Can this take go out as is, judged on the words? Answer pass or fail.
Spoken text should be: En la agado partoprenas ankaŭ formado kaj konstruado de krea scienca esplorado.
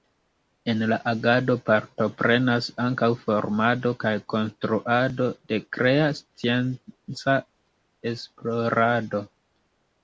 pass